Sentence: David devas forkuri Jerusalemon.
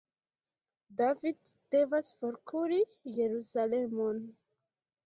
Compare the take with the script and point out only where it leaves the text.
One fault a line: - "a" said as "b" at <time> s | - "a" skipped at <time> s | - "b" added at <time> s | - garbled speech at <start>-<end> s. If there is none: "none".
none